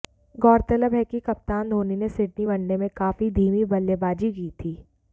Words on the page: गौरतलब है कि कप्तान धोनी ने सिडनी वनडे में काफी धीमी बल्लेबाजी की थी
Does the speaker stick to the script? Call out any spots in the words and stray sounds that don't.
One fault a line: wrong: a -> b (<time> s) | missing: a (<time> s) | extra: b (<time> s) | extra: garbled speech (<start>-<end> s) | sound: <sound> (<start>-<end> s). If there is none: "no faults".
no faults